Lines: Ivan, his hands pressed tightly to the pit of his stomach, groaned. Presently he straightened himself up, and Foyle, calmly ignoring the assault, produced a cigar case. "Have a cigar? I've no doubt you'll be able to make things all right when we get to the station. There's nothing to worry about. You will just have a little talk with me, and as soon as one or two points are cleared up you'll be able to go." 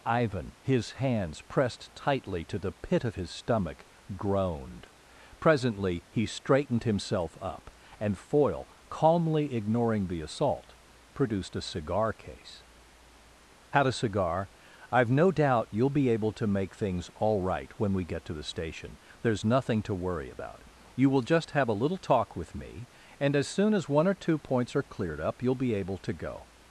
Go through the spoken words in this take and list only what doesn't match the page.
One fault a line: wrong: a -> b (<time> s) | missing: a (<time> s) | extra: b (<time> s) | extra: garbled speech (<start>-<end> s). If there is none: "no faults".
wrong: Have -> Had (13.7 s)